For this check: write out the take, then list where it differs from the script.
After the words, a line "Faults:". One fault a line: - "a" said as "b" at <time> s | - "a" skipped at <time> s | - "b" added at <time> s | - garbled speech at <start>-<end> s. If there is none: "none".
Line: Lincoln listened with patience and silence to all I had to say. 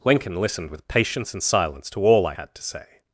Lincoln listened with patience and silence to all I had to say.
Faults:
none